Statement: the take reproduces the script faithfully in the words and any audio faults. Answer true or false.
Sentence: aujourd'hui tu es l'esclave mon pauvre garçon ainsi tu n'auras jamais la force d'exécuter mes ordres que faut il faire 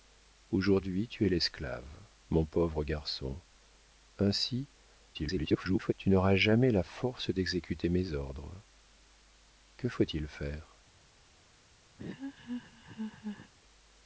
false